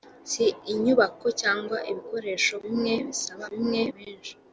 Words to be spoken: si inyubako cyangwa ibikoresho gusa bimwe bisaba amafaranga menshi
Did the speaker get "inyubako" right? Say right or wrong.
right